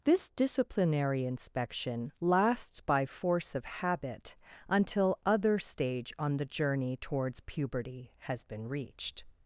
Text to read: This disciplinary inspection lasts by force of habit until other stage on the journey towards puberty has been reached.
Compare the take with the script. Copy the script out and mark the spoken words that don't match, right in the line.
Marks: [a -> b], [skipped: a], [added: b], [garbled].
This disciplinary inspection lasts by force of habit until other stage on the journey towards puberty has been reached.